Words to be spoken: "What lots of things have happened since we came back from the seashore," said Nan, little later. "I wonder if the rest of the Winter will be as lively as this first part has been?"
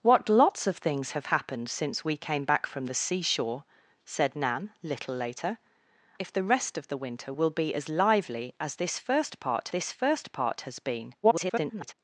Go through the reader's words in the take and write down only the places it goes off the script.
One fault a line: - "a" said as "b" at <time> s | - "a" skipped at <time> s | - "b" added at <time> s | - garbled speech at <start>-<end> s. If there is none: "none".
- "I wonder" skipped at 5.6 s
- "this first part" added at 9.7 s
- garbled speech at 11.2-11.9 s